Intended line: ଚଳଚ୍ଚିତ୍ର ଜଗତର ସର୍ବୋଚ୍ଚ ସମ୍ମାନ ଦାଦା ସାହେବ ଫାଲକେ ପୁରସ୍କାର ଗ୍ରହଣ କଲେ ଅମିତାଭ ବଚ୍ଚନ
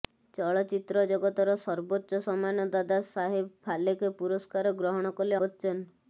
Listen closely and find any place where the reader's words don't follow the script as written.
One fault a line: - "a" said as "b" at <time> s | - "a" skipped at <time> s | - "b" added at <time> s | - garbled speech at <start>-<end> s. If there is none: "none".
- "ଅମିତାଭ" skipped at 5.4 s